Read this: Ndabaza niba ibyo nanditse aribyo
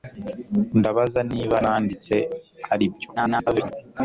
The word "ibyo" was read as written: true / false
false